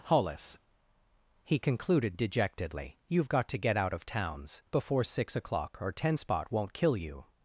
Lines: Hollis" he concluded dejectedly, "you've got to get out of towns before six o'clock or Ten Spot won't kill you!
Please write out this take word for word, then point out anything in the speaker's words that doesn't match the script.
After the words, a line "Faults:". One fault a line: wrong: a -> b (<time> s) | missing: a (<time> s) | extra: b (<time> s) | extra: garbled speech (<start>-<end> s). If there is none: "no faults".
Hollis" he concluded dejectedly, "you've got to get out of towns before six o'clock or Ten Spot won't kill you!
Faults:
no faults